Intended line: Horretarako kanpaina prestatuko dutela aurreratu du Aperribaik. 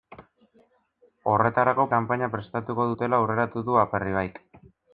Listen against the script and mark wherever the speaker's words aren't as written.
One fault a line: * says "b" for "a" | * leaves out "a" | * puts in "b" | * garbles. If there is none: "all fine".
all fine